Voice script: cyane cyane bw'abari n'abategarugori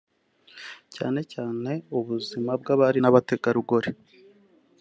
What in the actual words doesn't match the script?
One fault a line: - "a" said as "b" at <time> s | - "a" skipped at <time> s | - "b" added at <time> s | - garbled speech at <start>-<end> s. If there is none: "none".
- "ubuzima" added at 2.0 s